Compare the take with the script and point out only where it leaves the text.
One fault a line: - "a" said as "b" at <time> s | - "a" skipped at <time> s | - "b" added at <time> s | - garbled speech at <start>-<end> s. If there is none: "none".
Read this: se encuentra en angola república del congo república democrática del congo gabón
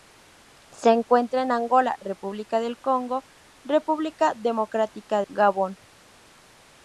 - "del congo" skipped at 5.2 s